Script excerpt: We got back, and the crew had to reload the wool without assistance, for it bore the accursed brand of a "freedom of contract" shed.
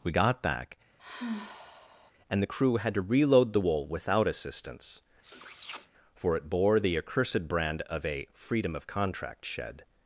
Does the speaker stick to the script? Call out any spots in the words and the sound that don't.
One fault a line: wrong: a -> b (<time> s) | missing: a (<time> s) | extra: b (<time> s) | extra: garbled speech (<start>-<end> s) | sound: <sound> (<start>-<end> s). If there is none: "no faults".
sound: sigh (1.0-2.1 s)
sound: sniff (5.2-5.9 s)